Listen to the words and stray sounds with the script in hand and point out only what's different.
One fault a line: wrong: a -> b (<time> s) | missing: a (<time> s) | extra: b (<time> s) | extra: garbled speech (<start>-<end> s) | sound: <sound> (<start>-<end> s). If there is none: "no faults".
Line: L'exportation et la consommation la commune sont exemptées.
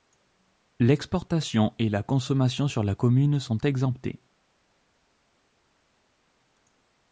extra: sur (2.7 s)